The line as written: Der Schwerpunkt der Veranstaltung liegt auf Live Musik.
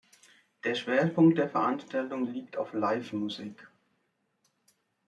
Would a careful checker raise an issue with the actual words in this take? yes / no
no